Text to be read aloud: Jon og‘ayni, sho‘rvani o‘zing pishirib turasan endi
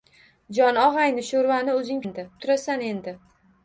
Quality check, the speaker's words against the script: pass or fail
fail